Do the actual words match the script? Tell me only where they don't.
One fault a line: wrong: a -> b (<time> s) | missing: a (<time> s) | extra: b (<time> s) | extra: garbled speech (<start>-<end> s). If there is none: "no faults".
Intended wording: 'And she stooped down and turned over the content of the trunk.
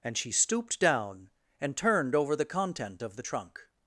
no faults